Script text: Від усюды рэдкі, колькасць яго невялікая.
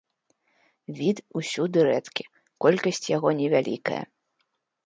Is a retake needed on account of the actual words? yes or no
no